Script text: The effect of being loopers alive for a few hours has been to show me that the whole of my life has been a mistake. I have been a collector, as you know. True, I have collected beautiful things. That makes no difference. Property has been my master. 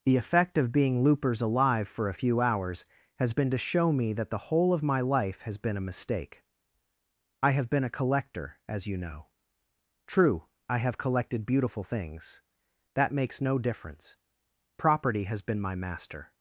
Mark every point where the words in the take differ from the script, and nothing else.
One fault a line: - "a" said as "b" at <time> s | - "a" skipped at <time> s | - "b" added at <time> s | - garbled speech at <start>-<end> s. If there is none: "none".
none